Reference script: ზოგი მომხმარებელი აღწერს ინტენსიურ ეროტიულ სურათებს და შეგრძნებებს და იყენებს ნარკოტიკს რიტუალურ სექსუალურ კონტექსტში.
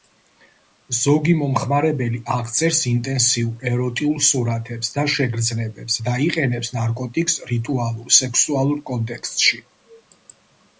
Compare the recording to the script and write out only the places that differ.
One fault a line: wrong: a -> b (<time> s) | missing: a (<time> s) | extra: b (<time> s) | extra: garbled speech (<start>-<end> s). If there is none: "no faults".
no faults